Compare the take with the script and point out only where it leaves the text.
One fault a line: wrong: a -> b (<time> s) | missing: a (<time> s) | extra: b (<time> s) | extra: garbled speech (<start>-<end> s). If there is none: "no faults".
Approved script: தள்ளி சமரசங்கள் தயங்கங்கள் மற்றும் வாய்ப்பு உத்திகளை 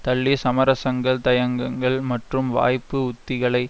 no faults